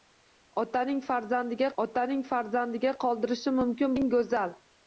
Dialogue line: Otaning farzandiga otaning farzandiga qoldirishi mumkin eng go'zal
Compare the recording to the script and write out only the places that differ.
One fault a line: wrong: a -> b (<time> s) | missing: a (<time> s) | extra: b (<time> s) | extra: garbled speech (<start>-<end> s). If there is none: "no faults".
no faults